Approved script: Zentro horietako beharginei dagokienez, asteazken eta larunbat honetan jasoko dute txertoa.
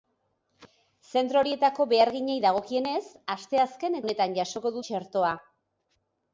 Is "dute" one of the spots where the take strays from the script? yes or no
yes